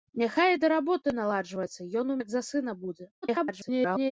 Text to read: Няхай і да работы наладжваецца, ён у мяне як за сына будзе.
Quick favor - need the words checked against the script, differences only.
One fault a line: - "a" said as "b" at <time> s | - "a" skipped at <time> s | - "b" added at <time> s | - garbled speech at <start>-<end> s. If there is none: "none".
- "мяне" skipped at 2.2 s
- garbled speech at 3.2-4.1 s